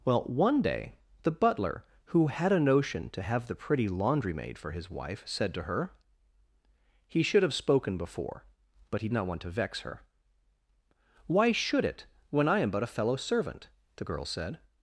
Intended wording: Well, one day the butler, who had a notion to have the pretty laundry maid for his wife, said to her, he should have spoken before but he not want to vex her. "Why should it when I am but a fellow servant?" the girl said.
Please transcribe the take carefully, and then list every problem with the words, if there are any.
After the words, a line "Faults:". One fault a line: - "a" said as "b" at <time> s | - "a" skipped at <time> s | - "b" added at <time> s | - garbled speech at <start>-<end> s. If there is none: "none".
Well, one day the butler, who had a notion to have the pretty laundry maid for his wife, said to her, he should have spoken before but he not want to vex her. "Why should it when I am but a fellow servant?" the girl said.
Faults:
none